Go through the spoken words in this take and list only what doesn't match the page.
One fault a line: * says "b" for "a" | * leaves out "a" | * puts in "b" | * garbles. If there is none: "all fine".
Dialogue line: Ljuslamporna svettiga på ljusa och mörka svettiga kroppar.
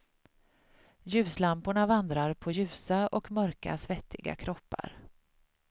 * says "vandrar" for "svettiga"